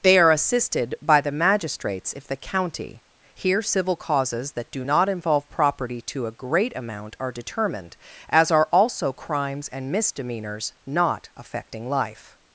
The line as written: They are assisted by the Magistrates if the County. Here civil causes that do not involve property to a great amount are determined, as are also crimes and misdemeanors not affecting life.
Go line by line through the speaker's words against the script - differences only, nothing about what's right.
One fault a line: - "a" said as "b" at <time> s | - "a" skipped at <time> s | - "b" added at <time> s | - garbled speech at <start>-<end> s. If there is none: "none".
none